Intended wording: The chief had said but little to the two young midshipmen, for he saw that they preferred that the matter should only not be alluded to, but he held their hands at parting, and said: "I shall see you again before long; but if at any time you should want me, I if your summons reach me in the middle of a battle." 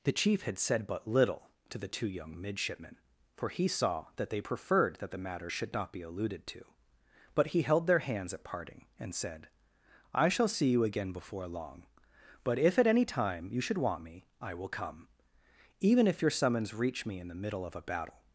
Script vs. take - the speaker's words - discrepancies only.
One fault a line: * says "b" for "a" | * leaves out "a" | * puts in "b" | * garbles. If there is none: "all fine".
* leaves out "only"
* puts in "will come even"